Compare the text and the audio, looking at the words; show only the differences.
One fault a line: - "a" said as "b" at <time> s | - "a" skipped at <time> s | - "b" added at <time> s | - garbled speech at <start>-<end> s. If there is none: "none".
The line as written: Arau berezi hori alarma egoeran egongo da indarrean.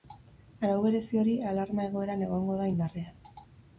none